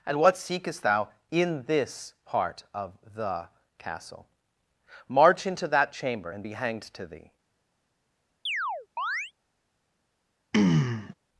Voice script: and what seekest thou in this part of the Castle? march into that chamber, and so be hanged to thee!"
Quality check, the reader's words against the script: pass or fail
fail